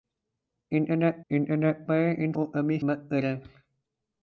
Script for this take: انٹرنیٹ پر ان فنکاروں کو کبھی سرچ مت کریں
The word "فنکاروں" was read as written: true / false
false